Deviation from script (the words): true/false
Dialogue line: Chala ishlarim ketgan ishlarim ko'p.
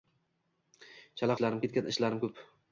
false